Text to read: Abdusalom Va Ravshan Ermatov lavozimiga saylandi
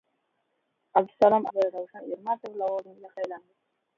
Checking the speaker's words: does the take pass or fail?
pass